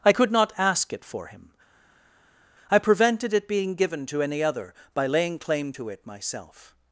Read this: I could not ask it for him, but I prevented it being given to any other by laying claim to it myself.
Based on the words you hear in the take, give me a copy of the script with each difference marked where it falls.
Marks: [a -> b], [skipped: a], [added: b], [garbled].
I could not ask it for him, [skipped: but] I prevented it being given to any other by laying claim to it myself.